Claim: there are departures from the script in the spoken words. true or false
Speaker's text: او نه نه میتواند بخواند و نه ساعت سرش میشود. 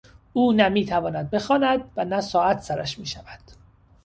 true